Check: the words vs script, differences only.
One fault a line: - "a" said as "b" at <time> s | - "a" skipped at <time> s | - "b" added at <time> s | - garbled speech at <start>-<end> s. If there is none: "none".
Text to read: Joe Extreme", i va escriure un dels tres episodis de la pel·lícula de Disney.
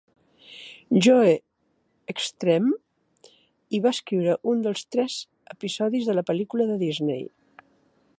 none